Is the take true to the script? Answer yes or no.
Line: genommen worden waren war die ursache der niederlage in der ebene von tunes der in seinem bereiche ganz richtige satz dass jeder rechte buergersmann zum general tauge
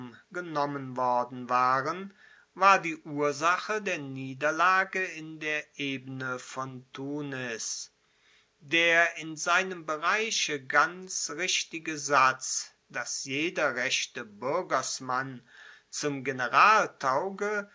yes